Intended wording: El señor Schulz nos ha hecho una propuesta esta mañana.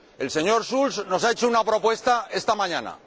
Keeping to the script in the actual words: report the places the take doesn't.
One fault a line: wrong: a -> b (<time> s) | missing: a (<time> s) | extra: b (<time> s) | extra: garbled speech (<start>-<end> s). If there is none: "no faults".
no faults